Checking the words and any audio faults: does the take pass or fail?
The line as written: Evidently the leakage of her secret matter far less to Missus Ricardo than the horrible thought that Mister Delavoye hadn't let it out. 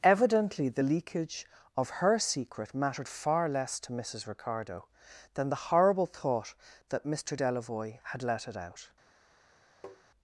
fail